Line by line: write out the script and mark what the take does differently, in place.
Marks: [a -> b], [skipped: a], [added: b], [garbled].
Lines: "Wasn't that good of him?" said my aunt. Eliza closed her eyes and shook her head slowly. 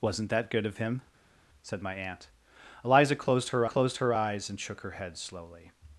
"Wasn't that good of him?" said my aunt. Eliza closed her [added: closed her] eyes and shook her head slowly.